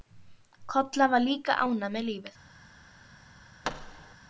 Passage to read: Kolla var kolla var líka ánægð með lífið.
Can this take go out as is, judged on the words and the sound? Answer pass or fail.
fail